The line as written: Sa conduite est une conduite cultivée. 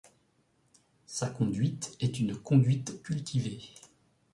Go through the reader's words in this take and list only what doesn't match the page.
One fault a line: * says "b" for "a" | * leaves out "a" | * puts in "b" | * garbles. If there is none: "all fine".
all fine